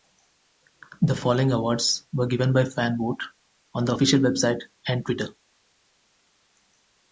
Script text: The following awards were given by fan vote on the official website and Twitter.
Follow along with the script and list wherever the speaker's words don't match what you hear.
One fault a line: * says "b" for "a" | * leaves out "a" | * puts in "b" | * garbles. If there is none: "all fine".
all fine